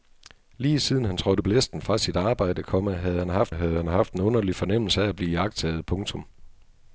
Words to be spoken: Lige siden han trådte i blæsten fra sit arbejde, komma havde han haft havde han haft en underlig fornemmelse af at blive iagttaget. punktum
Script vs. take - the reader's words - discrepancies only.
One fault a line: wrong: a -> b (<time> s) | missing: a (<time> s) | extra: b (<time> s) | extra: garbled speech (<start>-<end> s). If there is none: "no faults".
no faults